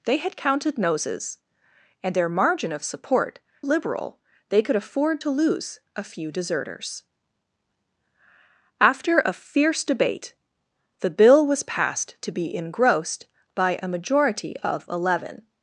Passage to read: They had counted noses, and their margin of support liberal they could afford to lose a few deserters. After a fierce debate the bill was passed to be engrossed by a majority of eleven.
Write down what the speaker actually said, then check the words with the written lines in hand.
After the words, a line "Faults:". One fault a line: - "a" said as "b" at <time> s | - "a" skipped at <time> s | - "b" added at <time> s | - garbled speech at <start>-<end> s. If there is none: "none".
They had counted noses, and their margin of support liberal they could afford to lose a few deserters. After a fierce debate the bill was passed to be engrossed by a majority of eleven.
Faults:
none